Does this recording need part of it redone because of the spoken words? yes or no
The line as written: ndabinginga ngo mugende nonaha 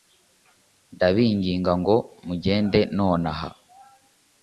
no